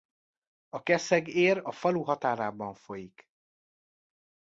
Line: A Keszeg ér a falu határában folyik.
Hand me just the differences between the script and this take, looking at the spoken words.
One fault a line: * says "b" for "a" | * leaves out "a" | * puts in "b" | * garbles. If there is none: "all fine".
all fine